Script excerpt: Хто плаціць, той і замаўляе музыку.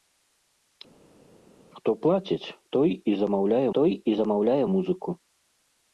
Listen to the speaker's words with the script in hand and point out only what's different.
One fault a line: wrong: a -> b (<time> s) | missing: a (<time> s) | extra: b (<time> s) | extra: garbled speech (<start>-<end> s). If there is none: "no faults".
extra: той і замаўляе (3.8 s)